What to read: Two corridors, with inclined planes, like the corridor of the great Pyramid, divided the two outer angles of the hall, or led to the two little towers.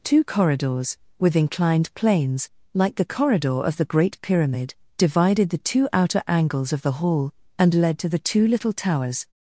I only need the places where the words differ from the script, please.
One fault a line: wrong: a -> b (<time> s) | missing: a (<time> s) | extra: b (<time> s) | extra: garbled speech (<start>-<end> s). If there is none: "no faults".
wrong: or -> and (7.6 s)